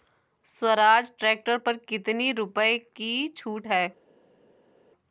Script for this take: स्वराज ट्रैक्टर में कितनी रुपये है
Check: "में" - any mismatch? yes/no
yes